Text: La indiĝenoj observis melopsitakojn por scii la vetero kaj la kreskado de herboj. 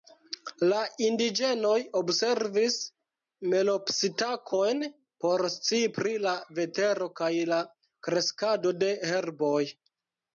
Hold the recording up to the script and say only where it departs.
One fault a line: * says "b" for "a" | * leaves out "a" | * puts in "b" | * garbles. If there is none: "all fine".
* puts in "pri"